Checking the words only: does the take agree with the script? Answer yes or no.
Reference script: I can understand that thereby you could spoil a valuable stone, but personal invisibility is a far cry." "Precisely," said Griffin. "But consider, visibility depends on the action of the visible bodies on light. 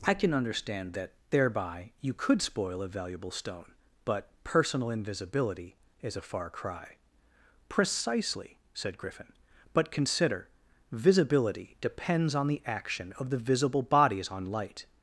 yes